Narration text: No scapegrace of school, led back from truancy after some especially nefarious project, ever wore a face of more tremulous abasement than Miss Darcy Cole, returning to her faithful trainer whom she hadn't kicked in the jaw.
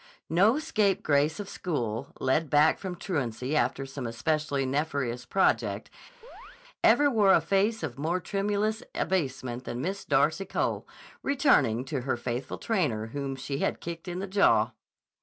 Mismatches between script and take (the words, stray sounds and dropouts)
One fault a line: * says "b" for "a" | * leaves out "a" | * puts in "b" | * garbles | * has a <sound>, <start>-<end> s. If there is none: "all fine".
* has a chirp, 6.2-6.6 s
* says "had" for "hadn't"